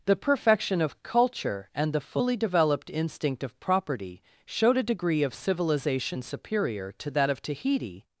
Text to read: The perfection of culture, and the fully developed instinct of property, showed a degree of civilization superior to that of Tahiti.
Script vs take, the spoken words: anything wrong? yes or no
no